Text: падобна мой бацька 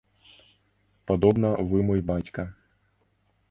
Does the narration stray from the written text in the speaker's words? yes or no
yes